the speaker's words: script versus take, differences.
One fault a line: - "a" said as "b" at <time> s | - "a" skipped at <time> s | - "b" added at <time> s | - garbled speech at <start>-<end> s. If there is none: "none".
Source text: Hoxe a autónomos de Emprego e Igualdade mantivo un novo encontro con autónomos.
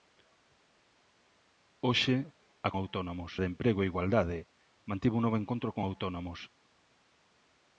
none